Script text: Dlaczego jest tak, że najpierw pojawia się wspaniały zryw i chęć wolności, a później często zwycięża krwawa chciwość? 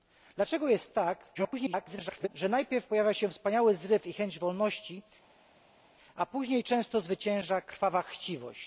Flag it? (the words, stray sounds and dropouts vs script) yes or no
yes